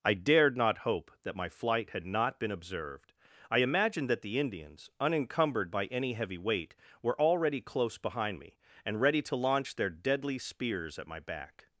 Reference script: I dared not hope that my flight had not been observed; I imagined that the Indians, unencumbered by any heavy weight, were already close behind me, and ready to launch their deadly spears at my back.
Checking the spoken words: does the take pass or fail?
pass